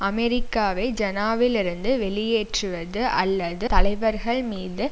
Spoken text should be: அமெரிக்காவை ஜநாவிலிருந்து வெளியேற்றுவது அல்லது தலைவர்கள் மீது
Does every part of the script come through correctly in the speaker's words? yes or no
yes